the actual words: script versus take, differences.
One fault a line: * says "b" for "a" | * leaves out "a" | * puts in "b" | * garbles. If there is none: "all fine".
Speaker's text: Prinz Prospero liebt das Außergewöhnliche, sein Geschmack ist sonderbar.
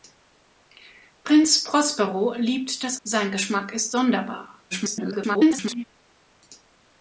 * leaves out "Außergewöhnliche"
* garbles